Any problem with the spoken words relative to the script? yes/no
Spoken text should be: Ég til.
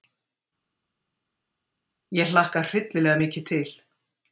yes